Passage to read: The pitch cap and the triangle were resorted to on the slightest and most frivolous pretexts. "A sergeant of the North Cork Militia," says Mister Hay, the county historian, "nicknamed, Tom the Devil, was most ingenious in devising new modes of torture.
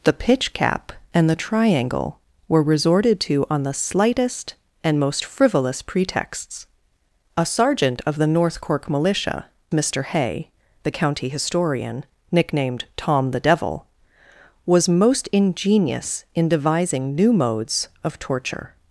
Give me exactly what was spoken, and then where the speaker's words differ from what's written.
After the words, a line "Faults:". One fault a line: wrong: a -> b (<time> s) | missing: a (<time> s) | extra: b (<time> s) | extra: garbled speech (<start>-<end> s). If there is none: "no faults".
The pitch cap and the triangle were resorted to on the slightest and most frivolous pretexts. "A sergeant of the North Cork Militia," Mister Hay, the county historian, "nicknamed, Tom the Devil, was most ingenious in devising new modes of torture.
Faults:
missing: says (9.4 s)